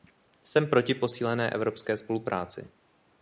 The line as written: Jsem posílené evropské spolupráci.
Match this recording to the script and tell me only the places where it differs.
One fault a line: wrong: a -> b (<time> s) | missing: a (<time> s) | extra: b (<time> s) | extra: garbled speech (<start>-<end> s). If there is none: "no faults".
extra: proti (0.7 s)